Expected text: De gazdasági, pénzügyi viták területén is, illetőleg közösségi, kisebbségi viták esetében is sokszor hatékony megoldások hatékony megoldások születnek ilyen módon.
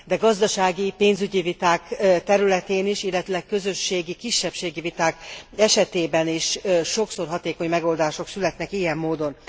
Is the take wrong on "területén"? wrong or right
right